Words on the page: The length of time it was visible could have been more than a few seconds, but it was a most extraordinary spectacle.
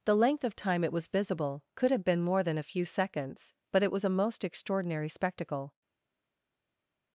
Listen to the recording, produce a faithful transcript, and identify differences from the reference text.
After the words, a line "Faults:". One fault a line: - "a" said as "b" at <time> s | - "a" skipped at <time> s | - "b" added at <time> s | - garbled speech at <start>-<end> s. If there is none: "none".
The length of time it was visible could have been more than a few seconds, but it was a most extraordinary spectacle.
Faults:
none